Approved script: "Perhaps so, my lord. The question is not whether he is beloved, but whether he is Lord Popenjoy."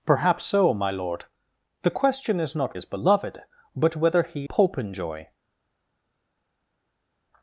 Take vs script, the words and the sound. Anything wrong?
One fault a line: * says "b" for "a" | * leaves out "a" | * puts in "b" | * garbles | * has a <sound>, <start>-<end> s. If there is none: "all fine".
* leaves out "whether he"
* leaves out "is Lord"